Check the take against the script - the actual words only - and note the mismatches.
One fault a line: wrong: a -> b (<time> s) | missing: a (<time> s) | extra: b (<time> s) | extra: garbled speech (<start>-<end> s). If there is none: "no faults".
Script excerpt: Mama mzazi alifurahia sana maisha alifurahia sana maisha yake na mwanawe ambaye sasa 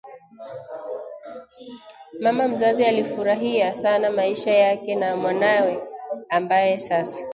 missing: alifurahia sana maisha (4.5 s)